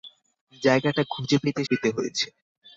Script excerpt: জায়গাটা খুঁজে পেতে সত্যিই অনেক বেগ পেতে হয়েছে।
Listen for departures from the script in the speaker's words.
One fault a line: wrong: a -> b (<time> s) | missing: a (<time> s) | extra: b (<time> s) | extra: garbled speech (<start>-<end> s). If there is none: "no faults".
missing: সত্যিই অনেক বেগ (1.6 s)